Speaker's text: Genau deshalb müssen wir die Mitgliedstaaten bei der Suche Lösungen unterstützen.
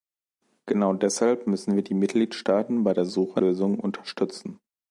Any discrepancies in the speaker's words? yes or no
no